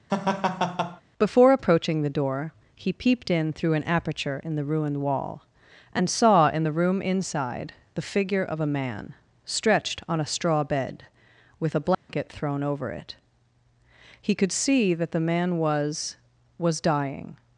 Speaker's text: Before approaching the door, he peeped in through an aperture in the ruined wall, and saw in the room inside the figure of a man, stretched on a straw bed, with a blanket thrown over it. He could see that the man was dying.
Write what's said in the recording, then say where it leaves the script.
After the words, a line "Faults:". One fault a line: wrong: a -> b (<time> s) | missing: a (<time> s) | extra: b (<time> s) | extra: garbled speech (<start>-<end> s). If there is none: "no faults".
Before approaching the door, he peeped in through an aperture in the ruined wall, and saw in the room inside the figure of a man, stretched on a straw bed, with a blanket thrown over it. He could see that the man was was dying.
Faults:
extra: was (16.6 s)